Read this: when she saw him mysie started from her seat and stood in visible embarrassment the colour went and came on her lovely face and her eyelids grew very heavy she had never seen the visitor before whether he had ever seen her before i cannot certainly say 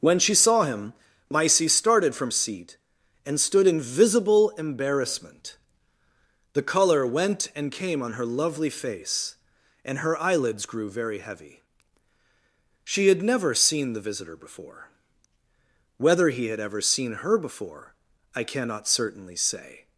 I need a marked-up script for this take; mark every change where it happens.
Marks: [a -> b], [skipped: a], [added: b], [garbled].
when she saw him mysie started from [skipped: her] seat and stood in visible embarrassment the colour went and came on her lovely face and her eyelids grew very heavy she had never seen the visitor before whether he had ever seen her before i cannot certainly say